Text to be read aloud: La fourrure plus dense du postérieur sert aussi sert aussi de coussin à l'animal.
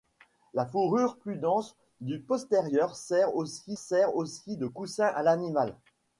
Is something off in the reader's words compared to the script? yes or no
no